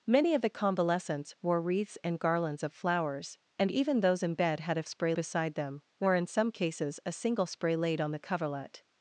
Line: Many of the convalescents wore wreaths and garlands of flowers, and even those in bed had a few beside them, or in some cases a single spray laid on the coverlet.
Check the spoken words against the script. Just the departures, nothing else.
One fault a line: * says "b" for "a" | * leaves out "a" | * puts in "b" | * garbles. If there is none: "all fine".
* says "spray" for "few"